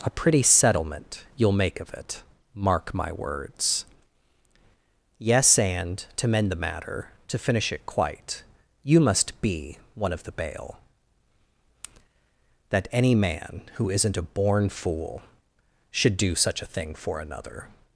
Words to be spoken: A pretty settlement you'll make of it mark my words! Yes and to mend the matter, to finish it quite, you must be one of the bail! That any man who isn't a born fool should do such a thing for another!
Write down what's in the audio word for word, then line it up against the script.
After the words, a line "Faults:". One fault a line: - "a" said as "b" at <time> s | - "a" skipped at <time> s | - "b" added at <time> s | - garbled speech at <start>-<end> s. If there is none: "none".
A pretty settlement you'll make of it mark my words! Yes and to mend the matter, to finish it quite, you must be one of the bail! That any man who isn't a born fool should do such a thing for another!
Faults:
none